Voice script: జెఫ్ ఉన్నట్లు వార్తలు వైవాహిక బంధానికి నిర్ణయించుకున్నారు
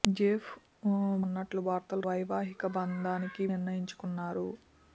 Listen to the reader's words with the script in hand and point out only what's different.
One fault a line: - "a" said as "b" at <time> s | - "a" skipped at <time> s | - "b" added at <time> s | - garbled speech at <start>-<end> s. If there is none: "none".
none